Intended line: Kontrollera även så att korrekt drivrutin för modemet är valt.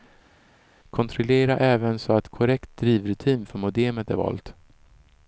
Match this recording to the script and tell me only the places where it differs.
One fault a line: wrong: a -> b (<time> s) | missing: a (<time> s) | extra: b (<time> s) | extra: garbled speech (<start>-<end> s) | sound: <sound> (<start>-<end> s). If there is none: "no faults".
no faults